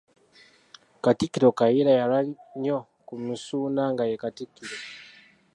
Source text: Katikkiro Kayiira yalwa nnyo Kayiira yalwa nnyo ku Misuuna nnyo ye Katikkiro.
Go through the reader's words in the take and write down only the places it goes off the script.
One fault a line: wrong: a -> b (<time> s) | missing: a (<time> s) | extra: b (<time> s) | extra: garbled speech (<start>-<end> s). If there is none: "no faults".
missing: Kayiira yalwa nnyo (2.8 s)
wrong: nnyo -> nga (3.9 s)